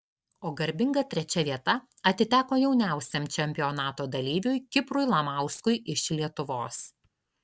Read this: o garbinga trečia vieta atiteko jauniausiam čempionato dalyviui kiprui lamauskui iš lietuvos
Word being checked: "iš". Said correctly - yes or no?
yes